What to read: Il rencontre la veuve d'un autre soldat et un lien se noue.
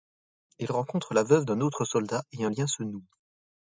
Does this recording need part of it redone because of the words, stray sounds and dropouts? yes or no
no